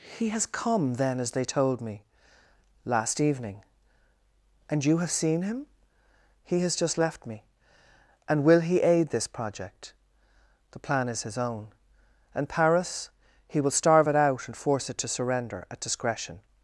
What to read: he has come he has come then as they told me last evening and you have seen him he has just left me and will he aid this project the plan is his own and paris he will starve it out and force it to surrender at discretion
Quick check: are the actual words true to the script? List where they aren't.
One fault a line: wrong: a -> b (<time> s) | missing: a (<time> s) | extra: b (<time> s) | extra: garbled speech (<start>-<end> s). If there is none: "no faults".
missing: he has come (0.9 s)